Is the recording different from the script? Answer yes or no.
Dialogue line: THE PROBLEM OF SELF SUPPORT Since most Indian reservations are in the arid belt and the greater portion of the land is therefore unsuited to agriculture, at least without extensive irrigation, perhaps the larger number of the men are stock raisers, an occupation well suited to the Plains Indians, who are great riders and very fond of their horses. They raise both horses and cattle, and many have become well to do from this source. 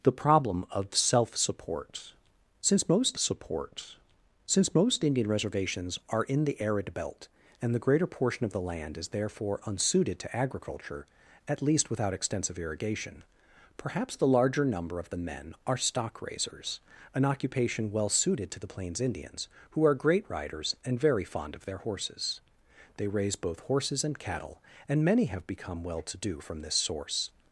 yes